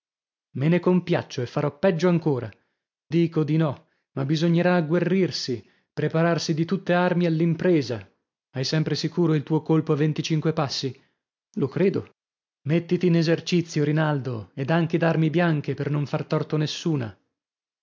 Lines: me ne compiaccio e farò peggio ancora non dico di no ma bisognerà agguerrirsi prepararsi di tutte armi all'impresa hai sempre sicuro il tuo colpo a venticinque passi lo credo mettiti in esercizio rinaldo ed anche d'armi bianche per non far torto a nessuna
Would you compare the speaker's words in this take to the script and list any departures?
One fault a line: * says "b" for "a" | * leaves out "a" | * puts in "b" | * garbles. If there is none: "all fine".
* leaves out "non"